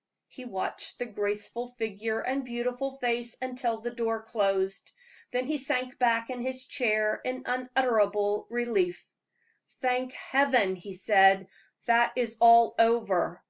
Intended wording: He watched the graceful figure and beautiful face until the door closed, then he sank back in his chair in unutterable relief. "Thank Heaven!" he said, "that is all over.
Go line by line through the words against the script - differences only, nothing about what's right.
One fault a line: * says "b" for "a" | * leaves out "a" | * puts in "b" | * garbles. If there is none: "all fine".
all fine